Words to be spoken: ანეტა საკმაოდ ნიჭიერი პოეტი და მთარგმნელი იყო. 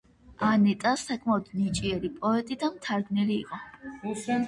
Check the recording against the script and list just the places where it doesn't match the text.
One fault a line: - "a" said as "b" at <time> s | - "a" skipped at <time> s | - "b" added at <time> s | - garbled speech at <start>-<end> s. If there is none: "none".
none